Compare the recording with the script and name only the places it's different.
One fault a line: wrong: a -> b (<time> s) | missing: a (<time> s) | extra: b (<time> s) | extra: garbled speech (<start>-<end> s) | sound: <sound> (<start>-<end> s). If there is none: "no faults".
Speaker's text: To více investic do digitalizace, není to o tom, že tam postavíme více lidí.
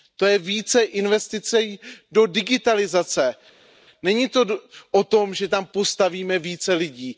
extra: je (0.2 s)